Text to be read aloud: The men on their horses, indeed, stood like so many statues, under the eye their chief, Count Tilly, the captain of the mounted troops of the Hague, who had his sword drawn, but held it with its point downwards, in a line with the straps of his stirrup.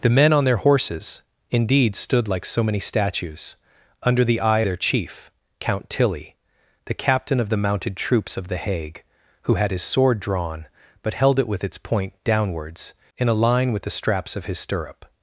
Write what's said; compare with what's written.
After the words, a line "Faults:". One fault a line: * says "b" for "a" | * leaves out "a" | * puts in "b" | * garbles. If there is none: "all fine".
The men on their horses, indeed, stood like so many statues, under the eye their chief, Count Tilly, the captain of the mounted troops of the Hague, who had his sword drawn, but held it with its point downwards, in a line with the straps of his stirrup.
Faults:
all fine